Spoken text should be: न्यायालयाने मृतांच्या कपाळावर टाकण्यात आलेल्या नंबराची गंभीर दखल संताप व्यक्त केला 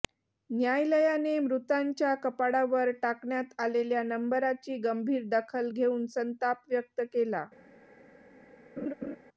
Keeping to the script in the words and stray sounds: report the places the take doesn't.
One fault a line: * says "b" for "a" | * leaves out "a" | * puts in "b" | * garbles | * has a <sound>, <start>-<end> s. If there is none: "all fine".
* puts in "घेऊन"
* has a laugh, 8.8-9.2 s